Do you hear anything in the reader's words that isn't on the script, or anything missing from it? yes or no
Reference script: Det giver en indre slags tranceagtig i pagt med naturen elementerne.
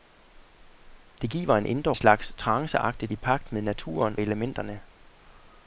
no